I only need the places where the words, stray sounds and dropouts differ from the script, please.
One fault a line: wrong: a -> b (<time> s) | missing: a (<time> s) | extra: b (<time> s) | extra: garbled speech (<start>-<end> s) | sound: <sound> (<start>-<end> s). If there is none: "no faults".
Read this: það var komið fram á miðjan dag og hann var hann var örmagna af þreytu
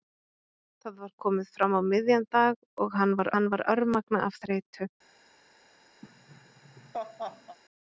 sound: laugh (6.0-7.6 s)